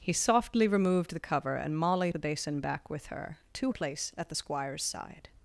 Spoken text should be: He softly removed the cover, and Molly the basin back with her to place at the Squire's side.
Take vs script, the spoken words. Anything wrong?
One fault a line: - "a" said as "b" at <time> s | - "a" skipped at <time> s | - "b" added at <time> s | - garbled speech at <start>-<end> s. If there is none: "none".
none